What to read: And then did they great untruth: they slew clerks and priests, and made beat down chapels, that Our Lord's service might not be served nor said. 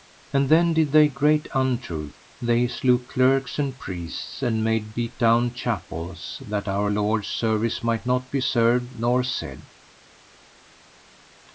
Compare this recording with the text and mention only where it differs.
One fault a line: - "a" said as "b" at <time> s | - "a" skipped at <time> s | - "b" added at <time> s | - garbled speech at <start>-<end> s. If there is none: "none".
none